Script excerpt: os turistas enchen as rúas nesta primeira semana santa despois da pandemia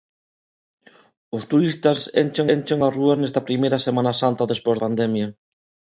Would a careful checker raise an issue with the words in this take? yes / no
yes